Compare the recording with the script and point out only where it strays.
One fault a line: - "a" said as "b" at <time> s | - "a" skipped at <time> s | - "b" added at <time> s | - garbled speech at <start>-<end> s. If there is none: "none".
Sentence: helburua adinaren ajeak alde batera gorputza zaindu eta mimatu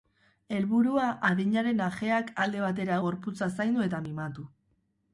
none